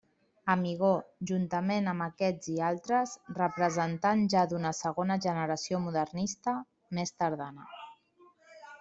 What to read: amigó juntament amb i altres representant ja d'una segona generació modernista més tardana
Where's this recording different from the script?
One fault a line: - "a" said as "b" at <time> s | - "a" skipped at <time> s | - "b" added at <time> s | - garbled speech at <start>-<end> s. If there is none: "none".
- "aquests" added at 2.0 s